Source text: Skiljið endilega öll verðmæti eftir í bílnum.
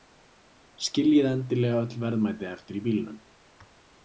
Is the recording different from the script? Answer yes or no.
no